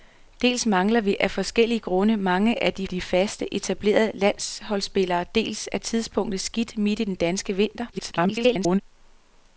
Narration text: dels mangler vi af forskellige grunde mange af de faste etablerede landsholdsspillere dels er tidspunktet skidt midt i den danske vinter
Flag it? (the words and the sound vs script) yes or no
yes